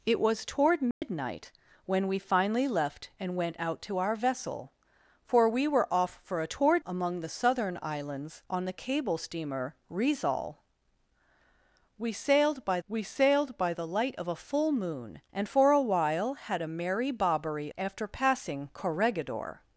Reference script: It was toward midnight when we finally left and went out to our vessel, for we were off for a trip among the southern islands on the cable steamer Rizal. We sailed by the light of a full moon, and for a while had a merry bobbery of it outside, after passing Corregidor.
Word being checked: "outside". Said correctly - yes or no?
no